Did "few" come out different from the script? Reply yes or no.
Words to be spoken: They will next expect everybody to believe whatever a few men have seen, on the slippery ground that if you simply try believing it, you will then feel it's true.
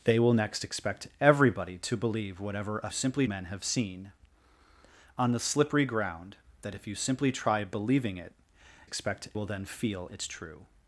yes